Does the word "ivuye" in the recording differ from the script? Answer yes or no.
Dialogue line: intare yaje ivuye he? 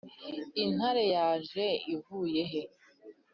no